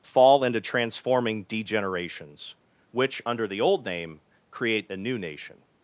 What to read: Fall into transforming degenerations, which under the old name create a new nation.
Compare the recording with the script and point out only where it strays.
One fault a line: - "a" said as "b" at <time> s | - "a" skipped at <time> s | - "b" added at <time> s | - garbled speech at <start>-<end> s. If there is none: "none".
none